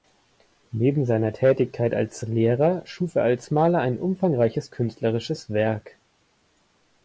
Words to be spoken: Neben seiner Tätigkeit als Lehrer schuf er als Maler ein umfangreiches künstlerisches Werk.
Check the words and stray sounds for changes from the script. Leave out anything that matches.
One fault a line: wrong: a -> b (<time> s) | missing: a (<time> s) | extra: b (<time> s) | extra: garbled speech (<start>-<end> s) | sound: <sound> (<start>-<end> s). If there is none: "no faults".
no faults